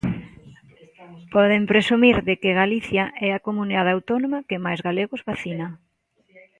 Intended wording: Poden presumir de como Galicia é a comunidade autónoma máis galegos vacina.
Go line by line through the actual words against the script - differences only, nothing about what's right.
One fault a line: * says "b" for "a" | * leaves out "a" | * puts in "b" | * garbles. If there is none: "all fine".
* says "que" for "como"
* puts in "que"